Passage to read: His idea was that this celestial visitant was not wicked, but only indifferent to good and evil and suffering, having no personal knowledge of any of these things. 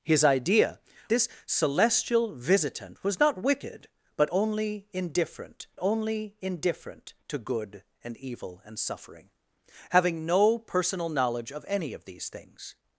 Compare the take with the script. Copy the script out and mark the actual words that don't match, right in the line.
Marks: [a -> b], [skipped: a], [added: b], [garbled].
His idea [skipped: was that] this celestial visitant was not wicked, but only indifferent [added: only indifferent] to good and evil and suffering, having no personal knowledge of any of these things.